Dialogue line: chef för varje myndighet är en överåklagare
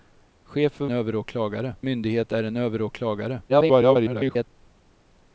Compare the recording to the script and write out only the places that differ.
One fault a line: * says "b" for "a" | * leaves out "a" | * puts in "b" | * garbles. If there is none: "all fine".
* says "överåklagare" for "varje"
* garbles